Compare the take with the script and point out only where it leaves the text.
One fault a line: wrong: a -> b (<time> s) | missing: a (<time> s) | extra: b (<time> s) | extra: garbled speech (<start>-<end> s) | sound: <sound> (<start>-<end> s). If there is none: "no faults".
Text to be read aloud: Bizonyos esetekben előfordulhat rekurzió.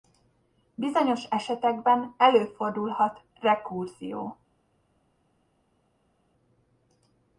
no faults